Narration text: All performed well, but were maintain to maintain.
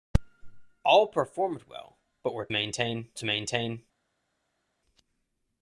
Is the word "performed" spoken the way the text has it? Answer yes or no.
yes